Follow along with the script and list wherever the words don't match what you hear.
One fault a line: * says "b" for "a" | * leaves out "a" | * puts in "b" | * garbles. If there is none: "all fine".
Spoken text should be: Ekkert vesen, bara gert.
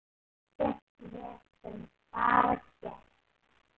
all fine